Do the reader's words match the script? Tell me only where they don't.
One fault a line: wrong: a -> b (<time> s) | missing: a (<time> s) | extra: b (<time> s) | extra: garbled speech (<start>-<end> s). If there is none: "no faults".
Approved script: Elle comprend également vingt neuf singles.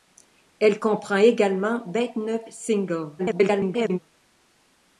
extra: garbled speech (3.2-4.0 s)